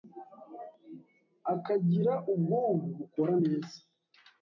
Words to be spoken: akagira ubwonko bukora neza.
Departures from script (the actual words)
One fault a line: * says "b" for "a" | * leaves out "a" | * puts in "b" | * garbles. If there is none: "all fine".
all fine